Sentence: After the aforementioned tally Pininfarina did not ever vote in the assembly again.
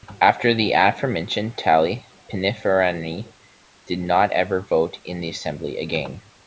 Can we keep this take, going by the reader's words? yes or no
yes